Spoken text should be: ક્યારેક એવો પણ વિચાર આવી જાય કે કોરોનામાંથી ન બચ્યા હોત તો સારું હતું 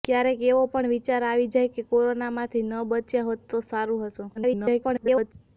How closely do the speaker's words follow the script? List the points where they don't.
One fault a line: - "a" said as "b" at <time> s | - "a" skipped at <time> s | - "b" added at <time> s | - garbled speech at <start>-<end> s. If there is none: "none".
- garbled speech at 4.3-5.3 s